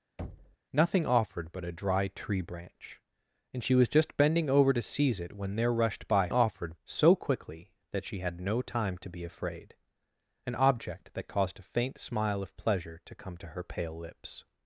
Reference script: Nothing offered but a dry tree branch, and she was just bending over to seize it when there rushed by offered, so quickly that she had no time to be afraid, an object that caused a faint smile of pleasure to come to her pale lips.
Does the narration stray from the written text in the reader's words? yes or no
no